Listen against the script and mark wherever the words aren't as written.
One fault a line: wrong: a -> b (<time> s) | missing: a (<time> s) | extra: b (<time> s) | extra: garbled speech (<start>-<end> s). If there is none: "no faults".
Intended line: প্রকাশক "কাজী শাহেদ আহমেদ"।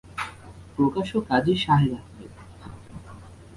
no faults